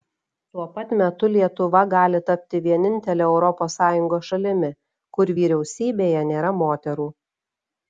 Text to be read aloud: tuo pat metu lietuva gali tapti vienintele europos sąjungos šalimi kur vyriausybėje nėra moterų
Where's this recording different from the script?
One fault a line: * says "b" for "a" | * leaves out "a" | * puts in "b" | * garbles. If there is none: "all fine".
all fine